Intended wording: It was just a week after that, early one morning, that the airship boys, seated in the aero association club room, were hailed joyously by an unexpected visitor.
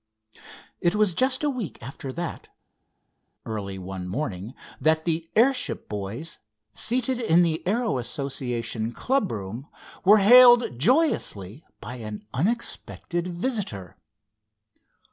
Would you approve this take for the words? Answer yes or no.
yes